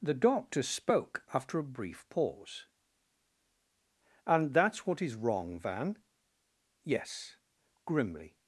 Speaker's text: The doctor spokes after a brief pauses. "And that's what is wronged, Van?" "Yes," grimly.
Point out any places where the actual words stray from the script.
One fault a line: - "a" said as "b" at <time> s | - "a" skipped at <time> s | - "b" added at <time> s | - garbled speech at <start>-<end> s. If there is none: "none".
- "spokes" said as "spoke" at 0.6 s
- "pauses" said as "pause" at 2.1 s
- "wronged" said as "wrong" at 5.2 s